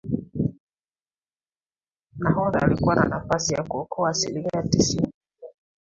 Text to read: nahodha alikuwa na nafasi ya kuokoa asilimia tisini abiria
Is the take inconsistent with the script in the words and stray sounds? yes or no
no